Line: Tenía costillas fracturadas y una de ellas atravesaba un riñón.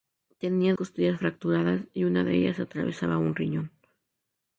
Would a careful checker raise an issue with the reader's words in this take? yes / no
no